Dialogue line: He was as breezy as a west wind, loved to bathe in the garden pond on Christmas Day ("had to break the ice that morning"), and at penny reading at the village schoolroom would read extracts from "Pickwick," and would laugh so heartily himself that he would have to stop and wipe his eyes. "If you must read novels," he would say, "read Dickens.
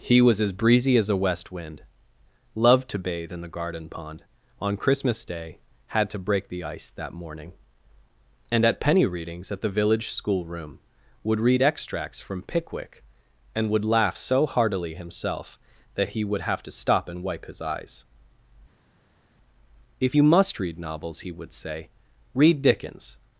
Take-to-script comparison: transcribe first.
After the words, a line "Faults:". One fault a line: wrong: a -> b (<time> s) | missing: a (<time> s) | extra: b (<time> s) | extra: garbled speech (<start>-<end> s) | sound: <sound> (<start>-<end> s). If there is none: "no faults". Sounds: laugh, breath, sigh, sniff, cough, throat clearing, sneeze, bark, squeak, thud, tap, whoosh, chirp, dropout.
He was as breezy as a west wind, loved to bathe in the garden pond on Christmas Day ("had to break the ice that morning"), and at penny readings at the village schoolroom would read extracts from "Pickwick," and would laugh so heartily himself that he would have to stop and wipe his eyes. "If you must read novels," he would say, "read Dickens.
Faults:
wrong: reading -> readings (9.1 s)